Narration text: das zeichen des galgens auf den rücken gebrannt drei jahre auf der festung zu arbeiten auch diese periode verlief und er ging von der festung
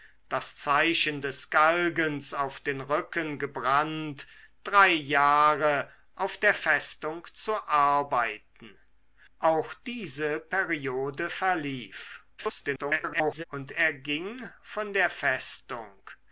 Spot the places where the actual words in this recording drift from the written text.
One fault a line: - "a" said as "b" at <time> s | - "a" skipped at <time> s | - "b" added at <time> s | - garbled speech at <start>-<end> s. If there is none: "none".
- garbled speech at 12.4-13.4 s